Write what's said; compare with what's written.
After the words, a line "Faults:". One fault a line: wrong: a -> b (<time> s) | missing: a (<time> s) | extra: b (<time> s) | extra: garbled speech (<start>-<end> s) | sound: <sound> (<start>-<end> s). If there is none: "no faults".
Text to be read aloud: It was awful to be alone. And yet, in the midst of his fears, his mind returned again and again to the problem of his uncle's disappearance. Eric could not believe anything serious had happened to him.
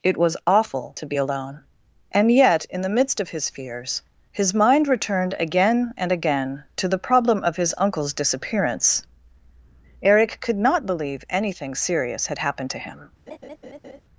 It was awful to be alone. And yet, in the midst of his fears, his mind returned again and again to the problem of his uncle's disappearance. Eric could not believe anything serious had happened to him.
Faults:
sound: laugh (13.3-14.0 s)